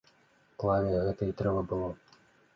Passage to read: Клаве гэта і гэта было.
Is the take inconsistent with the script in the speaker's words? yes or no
yes